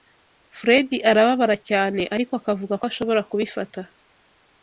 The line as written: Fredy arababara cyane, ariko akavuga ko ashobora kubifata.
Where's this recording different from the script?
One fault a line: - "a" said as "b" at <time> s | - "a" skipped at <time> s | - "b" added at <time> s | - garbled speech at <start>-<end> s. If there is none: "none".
none